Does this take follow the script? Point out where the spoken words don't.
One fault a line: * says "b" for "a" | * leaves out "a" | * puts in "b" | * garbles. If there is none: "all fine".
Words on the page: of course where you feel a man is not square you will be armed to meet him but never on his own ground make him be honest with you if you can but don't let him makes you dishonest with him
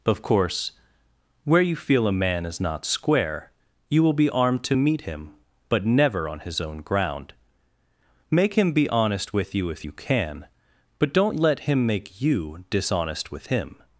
* says "make" for "makes"